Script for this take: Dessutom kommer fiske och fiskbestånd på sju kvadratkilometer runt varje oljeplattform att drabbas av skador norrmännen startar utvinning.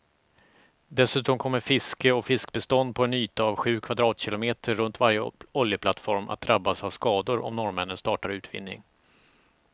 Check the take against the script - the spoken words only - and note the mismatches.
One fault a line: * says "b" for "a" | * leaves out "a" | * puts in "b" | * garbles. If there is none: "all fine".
* puts in "en yta av"
* puts in "om"